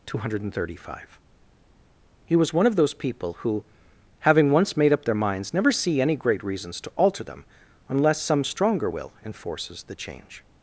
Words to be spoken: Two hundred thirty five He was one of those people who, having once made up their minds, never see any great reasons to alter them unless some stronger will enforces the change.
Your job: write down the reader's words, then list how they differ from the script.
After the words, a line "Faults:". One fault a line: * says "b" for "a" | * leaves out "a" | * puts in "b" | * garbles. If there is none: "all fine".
Two hundred thirty five He was one of those people who, having once made up their minds, never see any great reasons to alter them unless some stronger will enforces the change.
Faults:
all fine